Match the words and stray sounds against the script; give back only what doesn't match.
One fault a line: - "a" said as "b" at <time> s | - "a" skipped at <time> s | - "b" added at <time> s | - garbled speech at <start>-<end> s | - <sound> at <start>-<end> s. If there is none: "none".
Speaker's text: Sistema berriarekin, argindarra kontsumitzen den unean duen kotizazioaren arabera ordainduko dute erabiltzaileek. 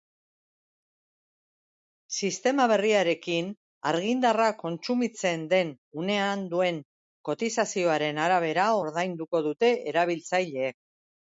none